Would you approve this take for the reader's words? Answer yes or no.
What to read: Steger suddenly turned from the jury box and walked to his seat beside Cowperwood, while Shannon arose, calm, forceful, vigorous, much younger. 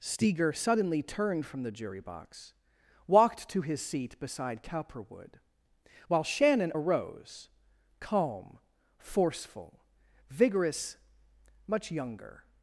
no